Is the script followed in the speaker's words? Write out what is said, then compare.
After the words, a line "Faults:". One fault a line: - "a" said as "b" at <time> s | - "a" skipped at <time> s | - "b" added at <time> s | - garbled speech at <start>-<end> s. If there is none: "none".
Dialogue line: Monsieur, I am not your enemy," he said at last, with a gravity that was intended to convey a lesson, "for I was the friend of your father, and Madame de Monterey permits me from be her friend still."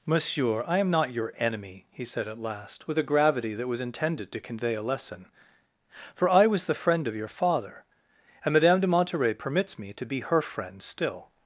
Monsieur, I am not your enemy," he said at last, with a gravity that was intended to convey a lesson, "for I was the friend of your father, and Madame de Monterey permits me to be her friend still."
Faults:
- "from" said as "to" at 9.9 s